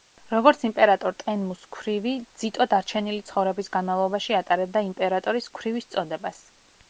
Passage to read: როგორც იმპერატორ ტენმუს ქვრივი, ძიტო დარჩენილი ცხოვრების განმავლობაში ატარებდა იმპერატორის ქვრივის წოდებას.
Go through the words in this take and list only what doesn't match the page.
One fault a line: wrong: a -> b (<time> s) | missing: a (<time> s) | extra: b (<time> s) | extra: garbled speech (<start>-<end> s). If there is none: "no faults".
no faults